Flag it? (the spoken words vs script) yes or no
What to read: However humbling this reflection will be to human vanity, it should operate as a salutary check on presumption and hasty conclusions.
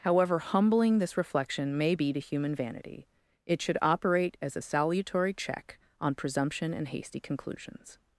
yes